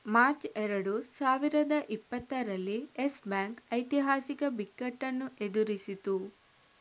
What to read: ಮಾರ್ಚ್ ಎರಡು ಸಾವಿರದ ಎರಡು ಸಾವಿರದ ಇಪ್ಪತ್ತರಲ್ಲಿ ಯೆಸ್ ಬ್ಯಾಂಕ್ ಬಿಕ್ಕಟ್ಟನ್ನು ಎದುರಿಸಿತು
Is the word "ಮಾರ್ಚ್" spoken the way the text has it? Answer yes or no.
yes